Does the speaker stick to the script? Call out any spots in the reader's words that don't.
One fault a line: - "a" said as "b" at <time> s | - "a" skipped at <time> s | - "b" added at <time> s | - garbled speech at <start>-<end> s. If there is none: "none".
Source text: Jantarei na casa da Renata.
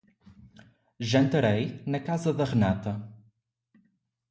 none